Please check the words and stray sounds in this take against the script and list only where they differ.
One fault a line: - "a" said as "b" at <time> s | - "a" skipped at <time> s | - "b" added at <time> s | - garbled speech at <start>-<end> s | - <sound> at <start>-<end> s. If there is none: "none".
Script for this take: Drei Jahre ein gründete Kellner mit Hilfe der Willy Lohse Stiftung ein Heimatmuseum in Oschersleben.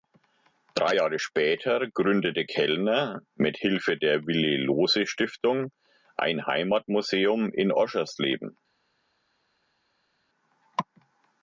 - "ein" said as "später" at 1.2 s